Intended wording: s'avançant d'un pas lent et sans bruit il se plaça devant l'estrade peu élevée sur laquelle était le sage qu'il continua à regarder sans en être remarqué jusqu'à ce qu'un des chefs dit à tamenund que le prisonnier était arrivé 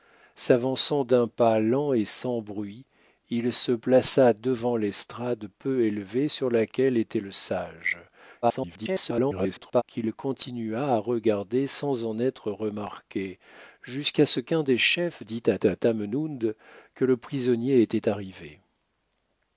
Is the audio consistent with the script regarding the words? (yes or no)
no